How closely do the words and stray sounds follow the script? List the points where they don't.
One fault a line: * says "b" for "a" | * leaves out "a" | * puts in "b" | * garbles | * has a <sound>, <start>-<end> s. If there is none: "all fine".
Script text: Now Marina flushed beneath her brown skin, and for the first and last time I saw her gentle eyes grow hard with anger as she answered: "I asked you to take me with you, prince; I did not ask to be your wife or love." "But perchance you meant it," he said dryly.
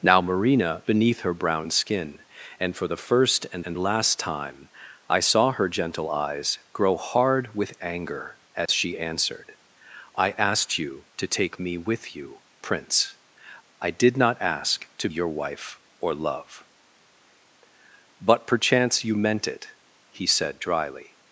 * leaves out "flushed"
* puts in "and"
* has a dropout, 8.7-8.7 s
* leaves out "be"